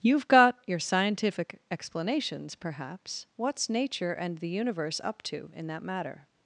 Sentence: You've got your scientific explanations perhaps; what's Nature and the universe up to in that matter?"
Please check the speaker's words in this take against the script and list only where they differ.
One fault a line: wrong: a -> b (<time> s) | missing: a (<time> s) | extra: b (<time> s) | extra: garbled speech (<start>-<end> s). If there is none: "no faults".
no faults